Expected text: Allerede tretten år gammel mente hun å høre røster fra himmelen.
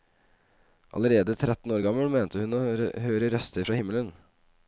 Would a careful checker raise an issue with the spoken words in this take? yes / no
no